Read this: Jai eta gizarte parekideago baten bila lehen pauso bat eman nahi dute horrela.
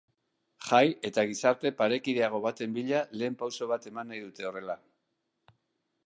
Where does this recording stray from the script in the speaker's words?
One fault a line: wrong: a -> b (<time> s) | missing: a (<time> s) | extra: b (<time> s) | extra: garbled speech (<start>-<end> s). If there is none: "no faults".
no faults